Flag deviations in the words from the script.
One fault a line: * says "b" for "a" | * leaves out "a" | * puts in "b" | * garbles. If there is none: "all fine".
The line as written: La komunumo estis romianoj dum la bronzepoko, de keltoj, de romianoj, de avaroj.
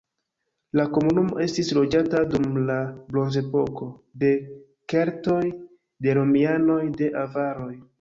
* says "loĝata" for "romianoj"